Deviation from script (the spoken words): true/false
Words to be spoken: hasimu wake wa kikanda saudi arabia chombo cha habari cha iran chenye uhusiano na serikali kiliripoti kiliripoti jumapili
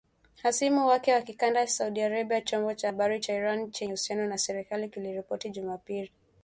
true